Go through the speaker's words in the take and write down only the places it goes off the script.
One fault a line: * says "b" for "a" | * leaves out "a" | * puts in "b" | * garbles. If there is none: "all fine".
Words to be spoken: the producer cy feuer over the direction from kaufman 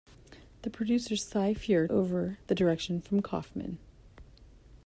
all fine